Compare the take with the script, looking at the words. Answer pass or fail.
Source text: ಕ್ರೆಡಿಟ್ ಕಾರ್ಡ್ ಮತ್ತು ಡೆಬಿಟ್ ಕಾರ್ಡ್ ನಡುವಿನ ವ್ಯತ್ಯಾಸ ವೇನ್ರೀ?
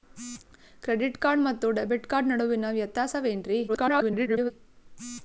fail